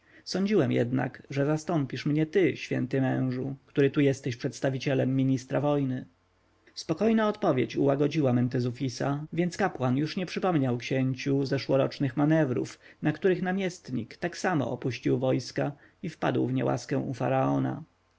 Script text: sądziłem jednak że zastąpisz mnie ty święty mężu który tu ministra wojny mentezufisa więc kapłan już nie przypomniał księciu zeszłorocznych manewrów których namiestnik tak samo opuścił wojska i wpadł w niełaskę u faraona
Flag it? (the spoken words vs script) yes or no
yes